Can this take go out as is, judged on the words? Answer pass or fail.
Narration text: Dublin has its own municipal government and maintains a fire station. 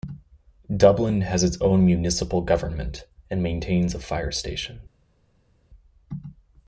pass